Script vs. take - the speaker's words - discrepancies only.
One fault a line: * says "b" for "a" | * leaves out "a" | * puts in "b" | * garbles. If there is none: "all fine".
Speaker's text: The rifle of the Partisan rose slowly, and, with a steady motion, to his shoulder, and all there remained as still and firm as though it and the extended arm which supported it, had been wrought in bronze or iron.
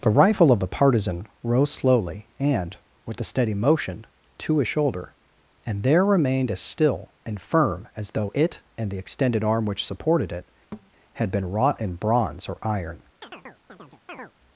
* leaves out "all"